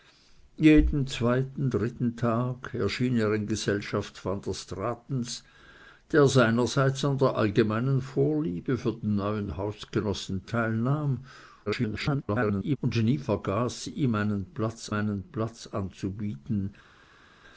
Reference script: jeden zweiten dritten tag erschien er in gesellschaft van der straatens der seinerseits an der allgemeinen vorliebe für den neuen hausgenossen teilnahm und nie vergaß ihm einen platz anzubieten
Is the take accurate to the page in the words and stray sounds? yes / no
no